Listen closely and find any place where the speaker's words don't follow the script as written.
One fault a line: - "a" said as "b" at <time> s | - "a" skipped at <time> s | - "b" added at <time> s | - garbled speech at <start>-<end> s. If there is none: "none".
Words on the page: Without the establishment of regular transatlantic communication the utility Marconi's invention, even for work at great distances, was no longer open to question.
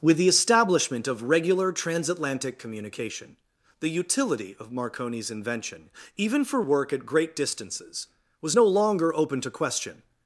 - "Without" said as "With" at 0.0 s
- "of" added at 4.6 s